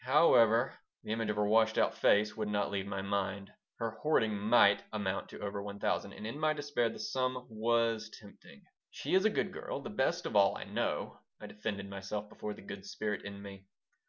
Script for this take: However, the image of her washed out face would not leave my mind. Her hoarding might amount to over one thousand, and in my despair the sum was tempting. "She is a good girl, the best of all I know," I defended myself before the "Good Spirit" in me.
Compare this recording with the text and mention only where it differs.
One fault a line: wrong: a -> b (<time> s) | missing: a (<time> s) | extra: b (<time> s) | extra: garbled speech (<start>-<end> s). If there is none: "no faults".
no faults